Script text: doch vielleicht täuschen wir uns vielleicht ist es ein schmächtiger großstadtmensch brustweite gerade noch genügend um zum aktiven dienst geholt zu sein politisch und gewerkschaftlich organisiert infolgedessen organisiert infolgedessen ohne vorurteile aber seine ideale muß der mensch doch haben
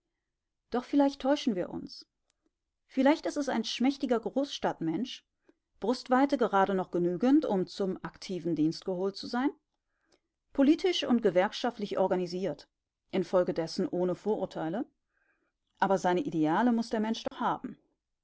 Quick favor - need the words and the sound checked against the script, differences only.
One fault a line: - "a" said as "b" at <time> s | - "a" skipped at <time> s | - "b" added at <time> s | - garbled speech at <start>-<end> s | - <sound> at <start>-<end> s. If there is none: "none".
- "organisiert infolgedessen" skipped at 13.9 s
- dropout at 17.3-17.3 s